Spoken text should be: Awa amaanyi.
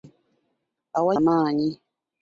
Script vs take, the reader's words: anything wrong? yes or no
no